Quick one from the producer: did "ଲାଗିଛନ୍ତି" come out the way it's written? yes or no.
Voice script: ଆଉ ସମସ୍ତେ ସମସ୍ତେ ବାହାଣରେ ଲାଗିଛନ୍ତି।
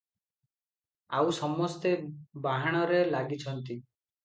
yes